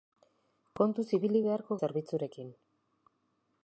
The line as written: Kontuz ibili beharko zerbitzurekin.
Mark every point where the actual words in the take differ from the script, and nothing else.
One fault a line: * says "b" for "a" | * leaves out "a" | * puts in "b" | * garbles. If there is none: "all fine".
all fine